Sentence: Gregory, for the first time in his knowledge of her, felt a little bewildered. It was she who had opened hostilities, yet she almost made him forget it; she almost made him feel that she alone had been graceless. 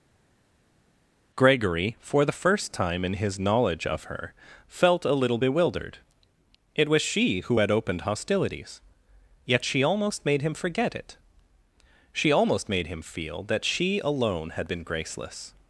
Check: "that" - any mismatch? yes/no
no